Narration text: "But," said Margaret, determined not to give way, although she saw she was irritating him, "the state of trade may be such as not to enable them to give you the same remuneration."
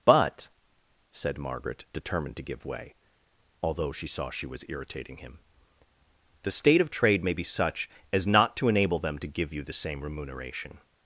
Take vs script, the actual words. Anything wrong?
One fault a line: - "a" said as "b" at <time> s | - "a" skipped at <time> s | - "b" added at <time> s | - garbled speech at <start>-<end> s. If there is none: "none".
- "not" skipped at 2.4 s